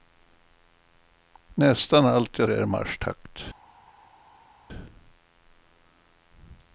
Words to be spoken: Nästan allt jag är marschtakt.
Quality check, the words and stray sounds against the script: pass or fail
pass